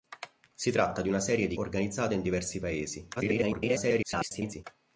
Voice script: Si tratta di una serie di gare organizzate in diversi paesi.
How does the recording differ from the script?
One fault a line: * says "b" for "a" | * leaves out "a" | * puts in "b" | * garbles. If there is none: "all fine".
* leaves out "gare"
* garbles